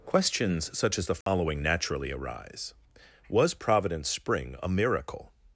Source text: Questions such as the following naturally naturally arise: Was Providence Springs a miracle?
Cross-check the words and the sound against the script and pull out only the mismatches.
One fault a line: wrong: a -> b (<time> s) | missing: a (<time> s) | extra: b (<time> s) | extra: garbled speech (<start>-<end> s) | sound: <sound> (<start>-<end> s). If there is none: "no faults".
sound: dropout (1.2-1.3 s)
missing: naturally (2.1 s)
wrong: Springs -> Spring (4.1 s)